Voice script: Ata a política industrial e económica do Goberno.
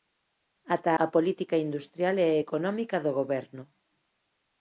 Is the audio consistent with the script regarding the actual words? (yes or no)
yes